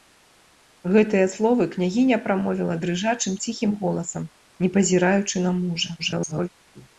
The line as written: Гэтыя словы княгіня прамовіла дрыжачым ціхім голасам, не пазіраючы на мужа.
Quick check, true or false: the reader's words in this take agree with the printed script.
false